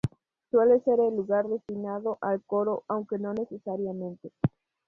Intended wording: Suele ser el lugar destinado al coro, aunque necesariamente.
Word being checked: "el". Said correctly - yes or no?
yes